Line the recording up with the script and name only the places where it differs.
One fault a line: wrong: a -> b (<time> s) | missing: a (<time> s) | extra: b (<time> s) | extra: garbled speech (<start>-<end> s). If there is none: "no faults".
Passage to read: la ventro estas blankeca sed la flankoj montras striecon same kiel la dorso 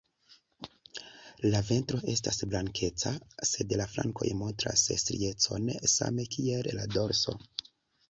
no faults